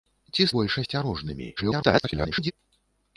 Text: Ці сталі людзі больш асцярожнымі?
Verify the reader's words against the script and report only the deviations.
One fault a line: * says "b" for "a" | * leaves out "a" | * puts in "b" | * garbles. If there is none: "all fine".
* leaves out "сталі людзі"
* garbles